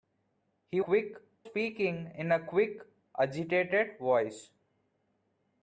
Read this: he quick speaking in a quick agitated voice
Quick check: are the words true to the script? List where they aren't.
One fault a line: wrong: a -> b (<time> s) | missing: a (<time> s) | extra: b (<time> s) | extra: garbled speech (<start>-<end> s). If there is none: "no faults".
no faults